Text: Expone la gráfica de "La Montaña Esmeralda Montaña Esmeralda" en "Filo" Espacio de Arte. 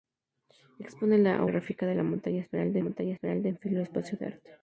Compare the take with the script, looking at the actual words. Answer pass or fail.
pass